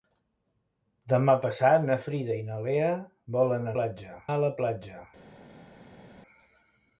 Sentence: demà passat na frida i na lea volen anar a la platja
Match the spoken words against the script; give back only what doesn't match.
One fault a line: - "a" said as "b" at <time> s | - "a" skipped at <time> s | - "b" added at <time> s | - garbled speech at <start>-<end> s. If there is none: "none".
- "anar" said as "platja" at 3.8 s